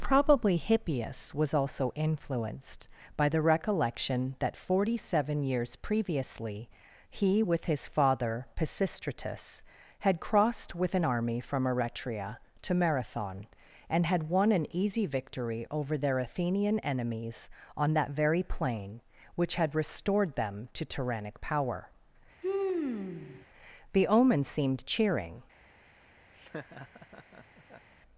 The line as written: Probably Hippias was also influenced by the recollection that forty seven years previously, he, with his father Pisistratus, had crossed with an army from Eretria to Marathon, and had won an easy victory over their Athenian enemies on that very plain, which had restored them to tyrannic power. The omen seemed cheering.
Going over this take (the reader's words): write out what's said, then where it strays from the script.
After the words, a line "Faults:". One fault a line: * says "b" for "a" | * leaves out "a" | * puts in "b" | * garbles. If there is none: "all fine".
Probably Hippias was also influenced by the recollection that forty seven years previously, he, with his father Pisistratus, had crossed with an army from Eretria to Marathon, and had won an easy victory over their Athenian enemies on that very plain, which had restored them to tyrannic power. The omen seemed cheering.
Faults:
all fine